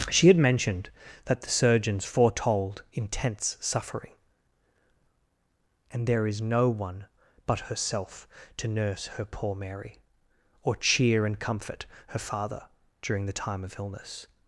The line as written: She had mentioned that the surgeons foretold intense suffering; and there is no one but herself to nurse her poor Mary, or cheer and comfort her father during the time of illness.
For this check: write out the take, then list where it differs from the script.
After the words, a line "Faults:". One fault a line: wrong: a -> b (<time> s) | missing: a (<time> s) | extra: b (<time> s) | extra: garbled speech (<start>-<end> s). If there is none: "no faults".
She had mentioned that the surgeons foretold intense suffering; and there is no one but herself to nurse her poor Mary, or cheer and comfort her father during the time of illness.
Faults:
no faults